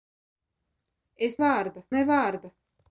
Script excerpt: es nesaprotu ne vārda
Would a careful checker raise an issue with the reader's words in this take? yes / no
yes